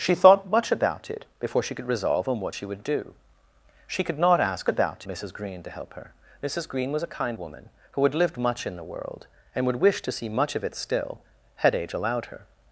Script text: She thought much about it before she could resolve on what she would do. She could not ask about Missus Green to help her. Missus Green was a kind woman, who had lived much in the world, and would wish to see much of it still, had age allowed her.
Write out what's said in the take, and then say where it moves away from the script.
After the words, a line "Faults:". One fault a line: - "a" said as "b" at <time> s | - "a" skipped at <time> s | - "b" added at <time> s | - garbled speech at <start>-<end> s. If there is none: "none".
She thought much about it before she could resolve on what she would do. She could not ask about Missus Green to help her. Missus Green was a kind woman, who had lived much in the world, and would wish to see much of it still, had age allowed her.
Faults:
none